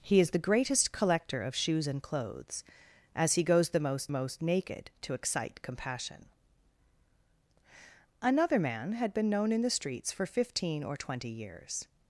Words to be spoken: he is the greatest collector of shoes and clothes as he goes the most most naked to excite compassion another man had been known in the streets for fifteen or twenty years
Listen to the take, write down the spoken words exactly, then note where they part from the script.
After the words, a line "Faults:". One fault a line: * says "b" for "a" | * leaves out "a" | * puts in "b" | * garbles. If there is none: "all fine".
he is the greatest collector of shoes and clothes as he goes the most most naked to excite compassion another man had been known in the streets for fifteen or twenty years
Faults:
all fine